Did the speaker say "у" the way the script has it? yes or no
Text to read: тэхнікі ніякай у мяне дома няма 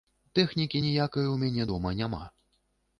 yes